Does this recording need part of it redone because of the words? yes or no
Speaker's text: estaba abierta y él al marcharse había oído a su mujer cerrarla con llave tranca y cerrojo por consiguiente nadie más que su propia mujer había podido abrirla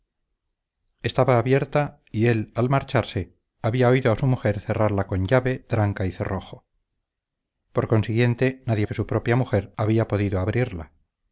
yes